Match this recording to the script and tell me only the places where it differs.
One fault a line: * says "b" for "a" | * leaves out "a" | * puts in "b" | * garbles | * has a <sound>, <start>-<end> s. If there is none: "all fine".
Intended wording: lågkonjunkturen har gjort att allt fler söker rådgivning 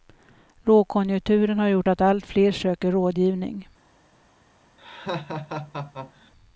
* has a laugh, 4.8-6.3 s